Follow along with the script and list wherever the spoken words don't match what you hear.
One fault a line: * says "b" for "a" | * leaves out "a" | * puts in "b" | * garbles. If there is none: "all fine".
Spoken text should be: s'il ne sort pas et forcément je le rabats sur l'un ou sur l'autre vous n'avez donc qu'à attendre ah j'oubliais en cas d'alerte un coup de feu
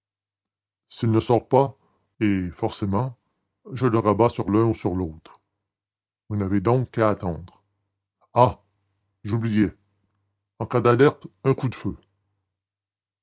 all fine